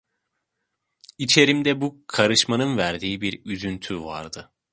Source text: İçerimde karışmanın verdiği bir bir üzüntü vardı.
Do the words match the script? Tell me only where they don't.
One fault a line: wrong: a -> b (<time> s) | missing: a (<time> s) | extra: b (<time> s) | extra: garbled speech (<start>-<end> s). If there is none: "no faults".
extra: bu (1.8 s)
missing: bir (3.4 s)